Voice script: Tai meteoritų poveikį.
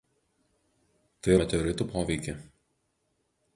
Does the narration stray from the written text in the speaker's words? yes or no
no